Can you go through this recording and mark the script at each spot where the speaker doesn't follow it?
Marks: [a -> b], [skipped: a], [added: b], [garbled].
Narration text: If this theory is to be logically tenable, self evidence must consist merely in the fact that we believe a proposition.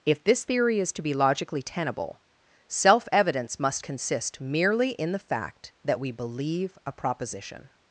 If this theory is to be logically tenable, self evidence must consist merely in the fact that we believe a proposition.